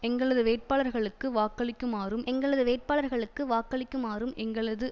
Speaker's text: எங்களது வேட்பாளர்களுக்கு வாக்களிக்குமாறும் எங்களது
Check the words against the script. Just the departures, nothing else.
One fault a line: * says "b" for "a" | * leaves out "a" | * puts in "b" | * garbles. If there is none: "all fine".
* puts in "வேட்பாளர்களுக்கு வாக்களிக்குமாறும் எங்களது"